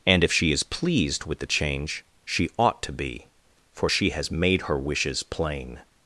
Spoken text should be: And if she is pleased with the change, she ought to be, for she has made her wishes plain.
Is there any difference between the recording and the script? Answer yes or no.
no